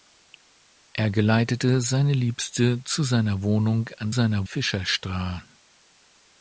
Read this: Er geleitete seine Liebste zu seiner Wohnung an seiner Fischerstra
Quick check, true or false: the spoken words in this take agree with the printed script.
true